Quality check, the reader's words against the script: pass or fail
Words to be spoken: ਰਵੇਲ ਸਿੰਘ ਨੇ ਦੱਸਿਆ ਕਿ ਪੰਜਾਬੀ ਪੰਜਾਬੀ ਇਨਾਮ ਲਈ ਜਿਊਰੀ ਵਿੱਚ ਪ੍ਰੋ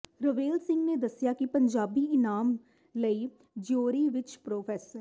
fail